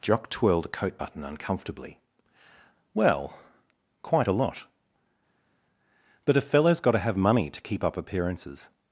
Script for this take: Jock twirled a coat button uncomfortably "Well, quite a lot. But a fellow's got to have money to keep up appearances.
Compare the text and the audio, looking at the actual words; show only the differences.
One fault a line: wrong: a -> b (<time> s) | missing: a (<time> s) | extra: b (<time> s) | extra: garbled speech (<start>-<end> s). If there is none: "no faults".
no faults